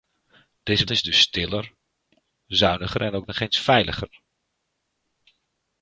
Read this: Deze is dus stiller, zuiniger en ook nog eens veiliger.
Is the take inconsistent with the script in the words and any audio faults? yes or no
no